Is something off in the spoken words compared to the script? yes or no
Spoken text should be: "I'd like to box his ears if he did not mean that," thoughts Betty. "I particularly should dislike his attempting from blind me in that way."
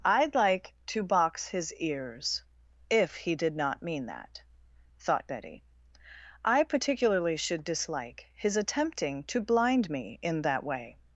yes